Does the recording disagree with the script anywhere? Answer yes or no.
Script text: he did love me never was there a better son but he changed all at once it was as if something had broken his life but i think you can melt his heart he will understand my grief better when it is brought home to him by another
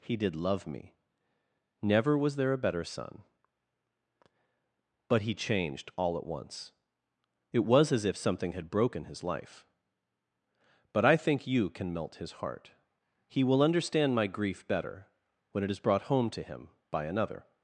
no